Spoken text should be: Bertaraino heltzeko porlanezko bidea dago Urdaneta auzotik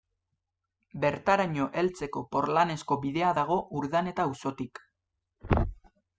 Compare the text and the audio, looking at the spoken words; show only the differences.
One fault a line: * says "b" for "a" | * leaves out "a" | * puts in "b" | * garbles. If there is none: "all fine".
all fine